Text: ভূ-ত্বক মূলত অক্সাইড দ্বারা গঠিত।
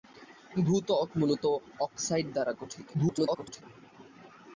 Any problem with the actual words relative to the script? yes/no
yes